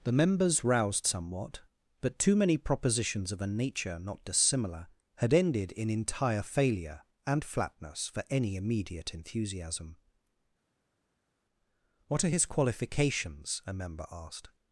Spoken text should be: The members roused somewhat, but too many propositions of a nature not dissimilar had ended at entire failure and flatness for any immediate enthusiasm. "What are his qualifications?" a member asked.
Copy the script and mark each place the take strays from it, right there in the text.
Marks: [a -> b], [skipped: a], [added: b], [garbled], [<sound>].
The members roused somewhat, but too many propositions of a nature not dissimilar had ended [at -> in] entire failure and flatness for any immediate enthusiasm. "What are his qualifications?" a member asked.